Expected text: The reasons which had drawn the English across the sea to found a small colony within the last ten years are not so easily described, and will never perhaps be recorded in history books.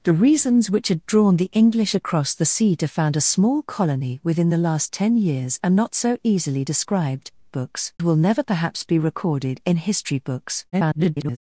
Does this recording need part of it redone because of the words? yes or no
yes